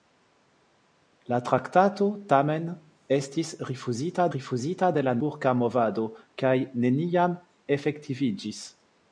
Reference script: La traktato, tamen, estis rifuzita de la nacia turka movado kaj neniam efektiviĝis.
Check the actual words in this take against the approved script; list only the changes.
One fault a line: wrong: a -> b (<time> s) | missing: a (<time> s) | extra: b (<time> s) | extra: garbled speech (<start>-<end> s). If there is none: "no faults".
extra: rifuzita (4.3 s)
missing: nacia (5.2 s)